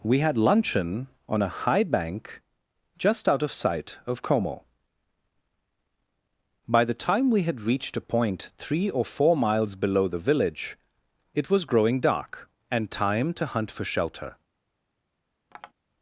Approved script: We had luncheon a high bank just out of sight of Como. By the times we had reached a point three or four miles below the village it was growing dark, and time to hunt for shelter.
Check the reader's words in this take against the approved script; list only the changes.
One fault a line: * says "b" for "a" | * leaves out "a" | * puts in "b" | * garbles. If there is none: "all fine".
* puts in "on"
* says "time" for "times"